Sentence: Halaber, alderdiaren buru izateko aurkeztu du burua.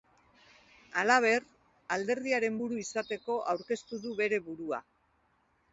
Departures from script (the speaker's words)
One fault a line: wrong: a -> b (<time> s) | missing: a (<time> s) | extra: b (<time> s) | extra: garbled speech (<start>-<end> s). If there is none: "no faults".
extra: bere (4.2 s)